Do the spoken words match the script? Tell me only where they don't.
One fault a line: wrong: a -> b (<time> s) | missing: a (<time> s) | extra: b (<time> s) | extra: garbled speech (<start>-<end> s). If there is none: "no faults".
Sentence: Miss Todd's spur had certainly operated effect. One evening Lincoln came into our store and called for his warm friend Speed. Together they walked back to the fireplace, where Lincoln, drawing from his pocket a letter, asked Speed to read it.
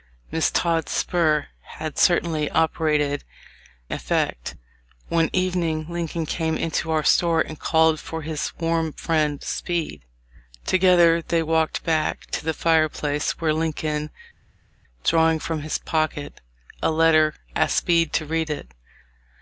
no faults